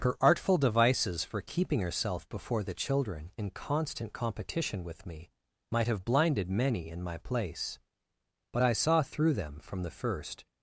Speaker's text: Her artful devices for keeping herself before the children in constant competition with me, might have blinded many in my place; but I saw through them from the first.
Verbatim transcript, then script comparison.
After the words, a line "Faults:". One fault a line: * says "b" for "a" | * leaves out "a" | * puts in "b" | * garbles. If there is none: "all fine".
Her artful devices for keeping herself before the children in constant competition with me, might have blinded many in my place; but I saw through them from the first.
Faults:
all fine